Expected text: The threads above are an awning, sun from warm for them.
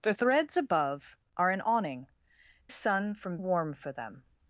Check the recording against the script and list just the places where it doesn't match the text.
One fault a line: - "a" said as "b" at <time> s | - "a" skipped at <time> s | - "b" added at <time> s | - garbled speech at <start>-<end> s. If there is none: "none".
none